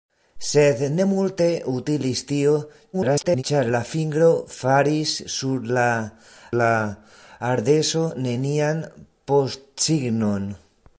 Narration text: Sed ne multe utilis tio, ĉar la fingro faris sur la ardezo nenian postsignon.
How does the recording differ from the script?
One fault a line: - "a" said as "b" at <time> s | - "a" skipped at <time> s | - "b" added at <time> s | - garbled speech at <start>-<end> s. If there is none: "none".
- garbled speech at 2.9-3.4 s
- "la" added at 6.6 s